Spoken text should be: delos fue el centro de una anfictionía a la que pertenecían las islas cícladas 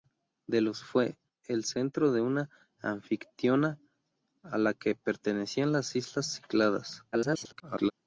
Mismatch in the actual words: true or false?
true